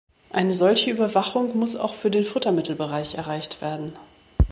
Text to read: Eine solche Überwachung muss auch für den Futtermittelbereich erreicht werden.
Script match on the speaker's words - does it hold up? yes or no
yes